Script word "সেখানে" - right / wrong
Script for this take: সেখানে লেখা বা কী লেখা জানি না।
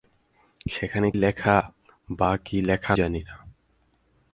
right